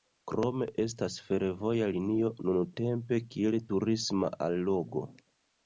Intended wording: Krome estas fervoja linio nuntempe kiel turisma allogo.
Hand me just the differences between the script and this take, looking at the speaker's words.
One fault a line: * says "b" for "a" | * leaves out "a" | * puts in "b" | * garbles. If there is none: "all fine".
all fine